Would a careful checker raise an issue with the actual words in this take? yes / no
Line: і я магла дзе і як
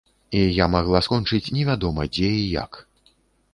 yes